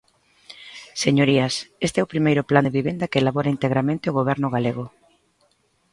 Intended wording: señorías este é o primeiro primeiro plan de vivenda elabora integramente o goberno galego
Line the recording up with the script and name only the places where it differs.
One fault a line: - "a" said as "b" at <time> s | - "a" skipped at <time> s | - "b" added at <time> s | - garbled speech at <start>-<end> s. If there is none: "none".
- "primeiro" skipped at 2.5 s
- "que" added at 3.1 s